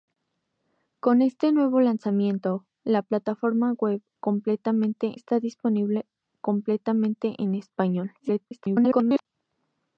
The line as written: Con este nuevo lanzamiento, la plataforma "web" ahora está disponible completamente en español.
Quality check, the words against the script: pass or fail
fail